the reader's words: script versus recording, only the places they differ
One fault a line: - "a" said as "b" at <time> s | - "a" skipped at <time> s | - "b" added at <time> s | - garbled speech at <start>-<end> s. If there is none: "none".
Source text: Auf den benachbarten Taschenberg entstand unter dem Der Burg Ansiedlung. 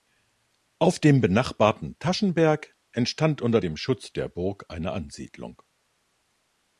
- "den" said as "dem" at 1.0 s
- "Schutz" added at 3.8 s
- "eine" added at 4.7 s